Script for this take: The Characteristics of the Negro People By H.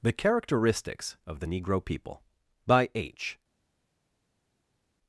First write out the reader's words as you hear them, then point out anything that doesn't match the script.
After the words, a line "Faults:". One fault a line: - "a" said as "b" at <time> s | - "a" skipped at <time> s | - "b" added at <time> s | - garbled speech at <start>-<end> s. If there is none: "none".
The Characteristics of the Negro People By H.
Faults:
none